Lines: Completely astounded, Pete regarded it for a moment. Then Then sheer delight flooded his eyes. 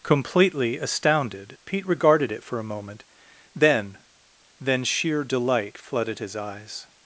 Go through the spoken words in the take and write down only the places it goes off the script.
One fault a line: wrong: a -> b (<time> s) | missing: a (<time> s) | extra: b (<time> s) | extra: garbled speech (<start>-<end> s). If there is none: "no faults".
no faults